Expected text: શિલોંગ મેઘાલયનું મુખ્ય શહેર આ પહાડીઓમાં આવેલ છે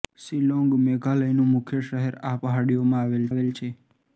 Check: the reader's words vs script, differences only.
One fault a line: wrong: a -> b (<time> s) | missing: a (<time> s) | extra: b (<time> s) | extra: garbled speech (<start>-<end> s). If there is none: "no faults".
extra: આવેલ (3.3 s)